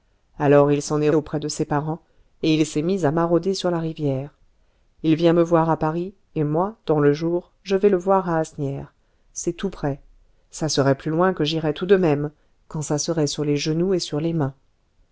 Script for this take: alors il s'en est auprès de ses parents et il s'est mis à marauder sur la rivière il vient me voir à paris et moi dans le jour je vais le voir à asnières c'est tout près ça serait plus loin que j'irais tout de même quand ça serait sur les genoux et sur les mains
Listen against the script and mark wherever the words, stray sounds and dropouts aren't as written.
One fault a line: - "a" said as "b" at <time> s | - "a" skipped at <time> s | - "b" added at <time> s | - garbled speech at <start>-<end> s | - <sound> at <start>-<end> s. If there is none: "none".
none